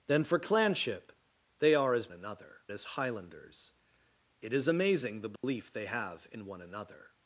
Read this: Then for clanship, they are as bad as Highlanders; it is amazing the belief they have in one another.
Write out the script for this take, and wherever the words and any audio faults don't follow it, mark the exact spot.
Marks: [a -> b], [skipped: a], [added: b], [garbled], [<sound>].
Then for clanship, they are as [bad -> another] as Highlanders; it is amazing the belief [dropout] they have in one another.